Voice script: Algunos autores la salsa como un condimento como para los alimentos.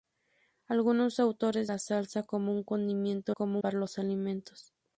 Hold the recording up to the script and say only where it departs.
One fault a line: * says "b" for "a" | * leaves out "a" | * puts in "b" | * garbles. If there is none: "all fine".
all fine